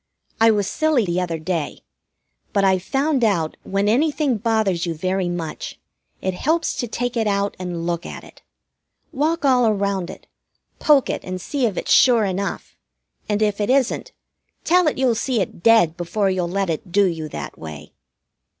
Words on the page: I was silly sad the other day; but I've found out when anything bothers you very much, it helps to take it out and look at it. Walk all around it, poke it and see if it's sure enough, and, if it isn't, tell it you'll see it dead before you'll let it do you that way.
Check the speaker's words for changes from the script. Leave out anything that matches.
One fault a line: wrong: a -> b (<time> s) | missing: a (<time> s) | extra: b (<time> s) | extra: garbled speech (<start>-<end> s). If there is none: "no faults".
missing: sad (1.1 s)